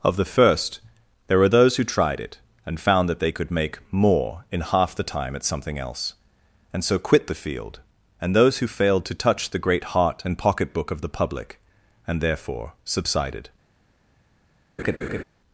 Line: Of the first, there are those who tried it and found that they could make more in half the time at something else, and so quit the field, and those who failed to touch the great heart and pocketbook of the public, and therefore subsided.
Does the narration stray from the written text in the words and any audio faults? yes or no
yes